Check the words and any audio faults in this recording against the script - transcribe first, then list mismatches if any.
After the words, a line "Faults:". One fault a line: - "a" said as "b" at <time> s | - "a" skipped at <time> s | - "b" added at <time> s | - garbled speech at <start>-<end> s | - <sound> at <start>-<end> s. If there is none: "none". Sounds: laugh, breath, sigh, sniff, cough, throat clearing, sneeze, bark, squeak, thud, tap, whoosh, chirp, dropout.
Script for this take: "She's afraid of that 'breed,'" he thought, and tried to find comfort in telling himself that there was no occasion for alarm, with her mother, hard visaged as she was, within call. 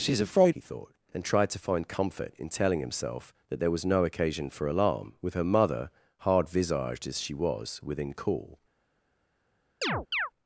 "She's afraid,'" he thought, and tried to find comfort in telling himself that there was no occasion for alarm, with her mother, hard visaged as she was, within call.
Faults:
- "of that breed" skipped at 0.6 s
- chirp at 9.8-10.3 s